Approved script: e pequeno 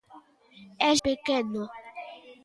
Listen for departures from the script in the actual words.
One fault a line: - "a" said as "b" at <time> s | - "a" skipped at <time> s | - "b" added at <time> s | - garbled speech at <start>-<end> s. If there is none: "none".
none